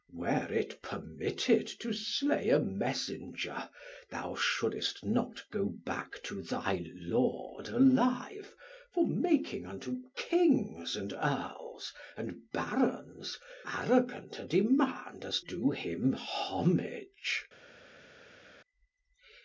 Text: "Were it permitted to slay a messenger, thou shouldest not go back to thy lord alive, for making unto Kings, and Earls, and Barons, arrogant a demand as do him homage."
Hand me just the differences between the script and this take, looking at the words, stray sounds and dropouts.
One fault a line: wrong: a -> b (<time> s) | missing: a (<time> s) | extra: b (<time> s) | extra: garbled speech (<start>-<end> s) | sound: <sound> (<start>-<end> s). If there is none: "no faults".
no faults